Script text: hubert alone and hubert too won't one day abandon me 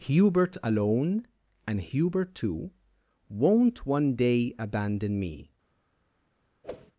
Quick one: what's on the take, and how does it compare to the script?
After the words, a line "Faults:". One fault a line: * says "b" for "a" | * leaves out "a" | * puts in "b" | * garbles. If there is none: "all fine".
hubert alone and hubert too won't one day abandon me
Faults:
all fine